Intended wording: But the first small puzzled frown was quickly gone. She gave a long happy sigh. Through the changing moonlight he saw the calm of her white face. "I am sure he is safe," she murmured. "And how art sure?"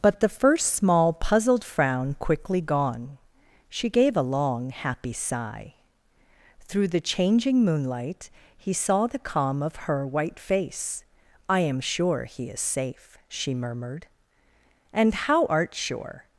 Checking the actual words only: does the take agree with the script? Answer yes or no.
no